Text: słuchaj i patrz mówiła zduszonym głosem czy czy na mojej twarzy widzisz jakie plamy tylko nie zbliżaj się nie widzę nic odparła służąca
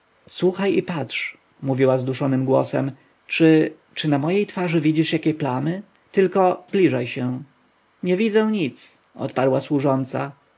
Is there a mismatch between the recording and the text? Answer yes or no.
yes